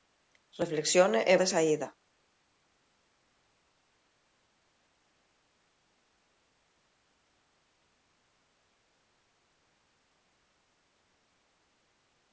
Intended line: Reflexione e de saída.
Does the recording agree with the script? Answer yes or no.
yes